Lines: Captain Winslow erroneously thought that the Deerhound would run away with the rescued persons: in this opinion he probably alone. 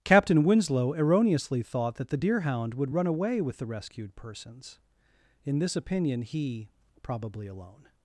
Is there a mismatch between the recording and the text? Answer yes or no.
no